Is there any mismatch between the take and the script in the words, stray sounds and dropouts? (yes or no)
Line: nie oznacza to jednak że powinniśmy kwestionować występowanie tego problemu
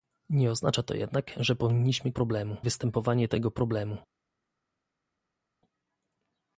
yes